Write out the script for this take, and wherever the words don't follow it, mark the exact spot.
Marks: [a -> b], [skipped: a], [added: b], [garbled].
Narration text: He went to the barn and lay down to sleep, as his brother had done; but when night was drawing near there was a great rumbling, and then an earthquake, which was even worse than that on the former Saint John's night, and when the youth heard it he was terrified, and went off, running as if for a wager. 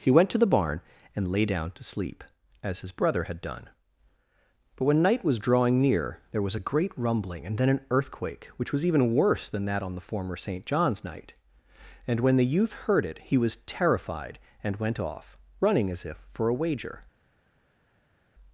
He went to the barn and lay down to sleep, as his brother had done; but when night was drawing near there was a great rumbling, and then an earthquake, which was even worse than that on the former Saint John's night, and when the youth heard it he was terrified, and went off, running as if for a wager.